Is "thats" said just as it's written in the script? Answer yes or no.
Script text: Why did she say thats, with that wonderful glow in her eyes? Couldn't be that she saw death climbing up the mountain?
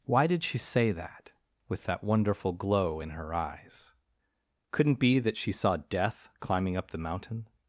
no